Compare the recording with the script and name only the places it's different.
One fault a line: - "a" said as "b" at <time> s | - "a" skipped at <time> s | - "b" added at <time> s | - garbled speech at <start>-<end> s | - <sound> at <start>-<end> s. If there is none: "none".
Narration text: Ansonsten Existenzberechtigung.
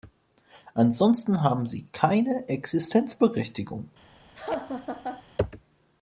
- "haben sie keine" added at 1.4 s
- laugh at 4.3-5.2 s